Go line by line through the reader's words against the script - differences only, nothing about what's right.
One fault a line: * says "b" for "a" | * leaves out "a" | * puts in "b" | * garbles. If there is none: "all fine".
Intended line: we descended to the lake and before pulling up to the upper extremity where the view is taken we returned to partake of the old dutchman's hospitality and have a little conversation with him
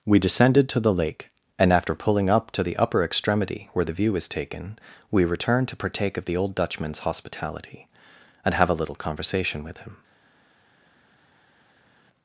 * says "after" for "before"